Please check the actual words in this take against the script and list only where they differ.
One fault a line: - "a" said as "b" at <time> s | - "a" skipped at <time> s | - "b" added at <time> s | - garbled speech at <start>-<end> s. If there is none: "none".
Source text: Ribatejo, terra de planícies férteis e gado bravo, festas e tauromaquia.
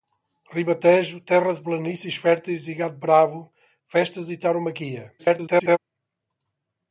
- garbled speech at 5.2-5.8 s